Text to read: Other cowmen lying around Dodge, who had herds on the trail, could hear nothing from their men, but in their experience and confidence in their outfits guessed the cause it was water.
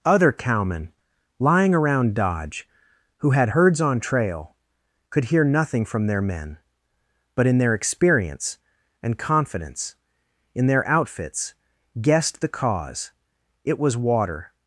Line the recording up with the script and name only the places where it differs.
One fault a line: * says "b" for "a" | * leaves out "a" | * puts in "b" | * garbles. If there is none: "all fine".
* leaves out "the"